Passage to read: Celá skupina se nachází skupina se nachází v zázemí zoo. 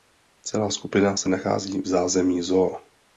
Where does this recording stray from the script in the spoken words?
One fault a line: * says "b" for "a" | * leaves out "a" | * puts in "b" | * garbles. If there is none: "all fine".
* leaves out "skupina se nachází"